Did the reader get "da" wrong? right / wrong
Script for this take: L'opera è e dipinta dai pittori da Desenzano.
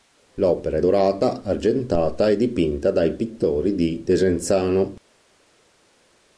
wrong